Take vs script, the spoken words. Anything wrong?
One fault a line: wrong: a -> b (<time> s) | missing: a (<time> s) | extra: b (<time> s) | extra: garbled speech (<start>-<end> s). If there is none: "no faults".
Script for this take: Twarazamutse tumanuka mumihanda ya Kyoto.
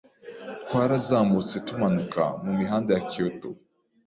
no faults